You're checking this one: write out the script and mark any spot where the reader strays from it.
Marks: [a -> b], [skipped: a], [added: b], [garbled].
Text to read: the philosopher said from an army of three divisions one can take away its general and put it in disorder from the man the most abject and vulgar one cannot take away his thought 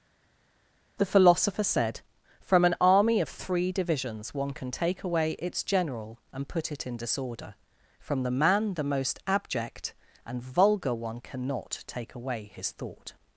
the philosopher said from an army of three divisions one can take away its general and put it in disorder from the man the most abject and vulgar one cannot take away his thought